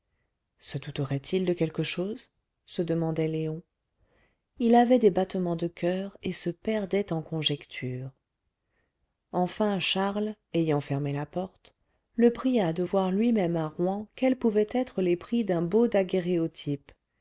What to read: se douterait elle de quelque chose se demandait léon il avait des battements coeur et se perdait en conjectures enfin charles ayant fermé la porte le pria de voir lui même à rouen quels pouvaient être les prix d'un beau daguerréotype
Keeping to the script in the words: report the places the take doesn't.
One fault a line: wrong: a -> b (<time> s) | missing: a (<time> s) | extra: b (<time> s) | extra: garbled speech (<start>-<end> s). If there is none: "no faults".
wrong: elle -> il (1.3 s)
extra: de (5.6 s)